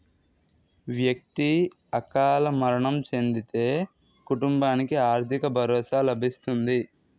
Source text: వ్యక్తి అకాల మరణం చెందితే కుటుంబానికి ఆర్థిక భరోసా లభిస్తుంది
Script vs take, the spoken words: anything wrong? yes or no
no